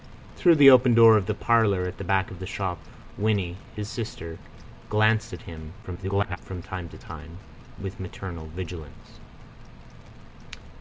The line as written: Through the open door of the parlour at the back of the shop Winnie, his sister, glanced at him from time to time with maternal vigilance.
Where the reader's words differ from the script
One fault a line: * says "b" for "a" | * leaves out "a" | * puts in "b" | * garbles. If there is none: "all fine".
* garbles